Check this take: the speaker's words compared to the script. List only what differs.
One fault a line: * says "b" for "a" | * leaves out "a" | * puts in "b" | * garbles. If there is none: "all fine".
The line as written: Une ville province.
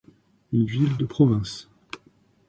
* puts in "de"